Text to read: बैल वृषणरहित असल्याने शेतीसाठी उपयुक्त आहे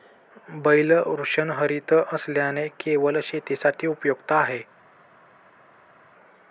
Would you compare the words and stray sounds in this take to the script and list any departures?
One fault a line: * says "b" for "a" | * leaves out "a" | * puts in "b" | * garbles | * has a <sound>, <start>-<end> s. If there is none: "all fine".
* puts in "केवळ"